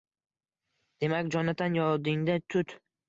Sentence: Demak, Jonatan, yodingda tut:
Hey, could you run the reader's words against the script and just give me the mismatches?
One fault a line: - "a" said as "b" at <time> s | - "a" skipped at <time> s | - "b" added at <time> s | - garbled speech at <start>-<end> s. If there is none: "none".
none